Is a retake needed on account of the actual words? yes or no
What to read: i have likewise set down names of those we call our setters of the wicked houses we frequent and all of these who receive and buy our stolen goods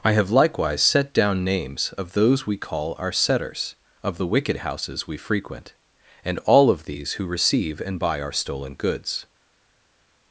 no